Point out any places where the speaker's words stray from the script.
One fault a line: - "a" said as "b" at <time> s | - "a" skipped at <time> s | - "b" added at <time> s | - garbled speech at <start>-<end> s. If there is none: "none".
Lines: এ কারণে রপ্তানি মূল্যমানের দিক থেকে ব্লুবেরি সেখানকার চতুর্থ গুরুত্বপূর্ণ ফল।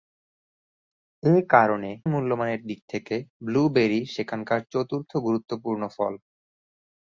- "রপ্তানি" skipped at 1.9 s